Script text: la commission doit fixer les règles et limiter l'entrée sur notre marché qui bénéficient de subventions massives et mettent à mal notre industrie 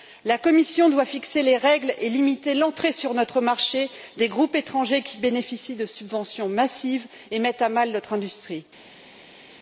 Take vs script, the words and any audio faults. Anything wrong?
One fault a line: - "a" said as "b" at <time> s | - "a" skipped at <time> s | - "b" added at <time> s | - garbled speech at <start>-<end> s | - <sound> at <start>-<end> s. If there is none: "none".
- "des groupes étrangers" added at 4.2 s